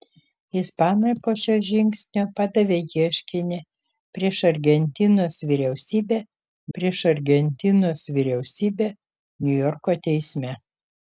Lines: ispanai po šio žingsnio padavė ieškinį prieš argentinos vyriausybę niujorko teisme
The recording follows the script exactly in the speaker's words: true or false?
false